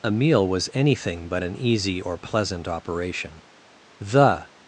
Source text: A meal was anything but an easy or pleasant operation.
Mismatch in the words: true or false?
true